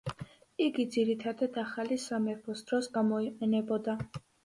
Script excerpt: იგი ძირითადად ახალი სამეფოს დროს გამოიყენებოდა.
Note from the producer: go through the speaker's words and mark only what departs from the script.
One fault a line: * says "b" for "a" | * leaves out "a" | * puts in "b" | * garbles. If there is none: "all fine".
all fine